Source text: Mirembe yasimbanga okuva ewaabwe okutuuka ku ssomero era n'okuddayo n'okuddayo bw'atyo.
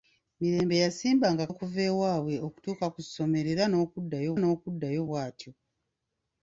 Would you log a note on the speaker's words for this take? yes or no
no